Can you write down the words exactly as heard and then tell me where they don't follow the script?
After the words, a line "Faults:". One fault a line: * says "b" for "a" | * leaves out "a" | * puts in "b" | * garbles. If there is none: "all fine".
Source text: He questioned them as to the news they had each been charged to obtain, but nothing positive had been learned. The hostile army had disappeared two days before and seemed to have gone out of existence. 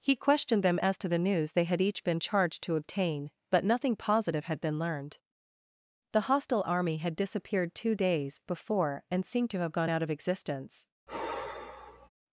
He questioned them as to the news they had each been charged to obtain, but nothing positive had been learned. The hostile army had disappeared two days before and seemed to have gone out of existence.
Faults:
all fine